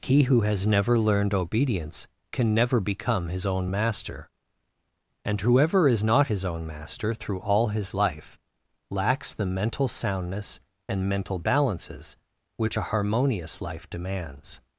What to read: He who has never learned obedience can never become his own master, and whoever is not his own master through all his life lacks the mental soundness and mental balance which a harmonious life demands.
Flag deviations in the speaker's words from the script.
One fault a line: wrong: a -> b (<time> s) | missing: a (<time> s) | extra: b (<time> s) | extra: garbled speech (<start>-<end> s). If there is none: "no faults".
wrong: balance -> balances (11.4 s)